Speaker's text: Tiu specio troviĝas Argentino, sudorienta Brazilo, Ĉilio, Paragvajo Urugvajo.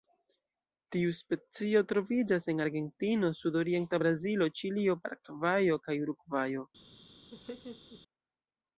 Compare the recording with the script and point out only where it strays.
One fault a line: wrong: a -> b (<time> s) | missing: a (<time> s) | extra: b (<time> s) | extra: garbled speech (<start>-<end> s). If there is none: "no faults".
extra: en (2.5 s)
extra: kaj (5.9 s)